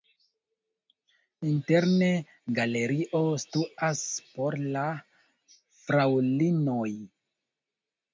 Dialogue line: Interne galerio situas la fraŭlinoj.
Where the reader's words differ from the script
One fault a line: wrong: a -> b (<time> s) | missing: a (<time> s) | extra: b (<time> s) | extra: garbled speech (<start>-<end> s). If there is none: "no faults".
extra: por (4.4 s)